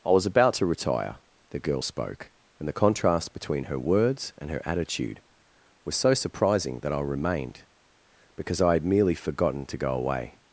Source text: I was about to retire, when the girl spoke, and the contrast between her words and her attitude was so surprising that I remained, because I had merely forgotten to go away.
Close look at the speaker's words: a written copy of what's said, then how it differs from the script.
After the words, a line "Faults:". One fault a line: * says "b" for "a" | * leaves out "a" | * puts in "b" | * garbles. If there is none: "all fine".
I was about to retire, the girl spoke, and the contrast between her words and her attitude was so surprising that I remained, because I had merely forgotten to go away.
Faults:
* leaves out "when"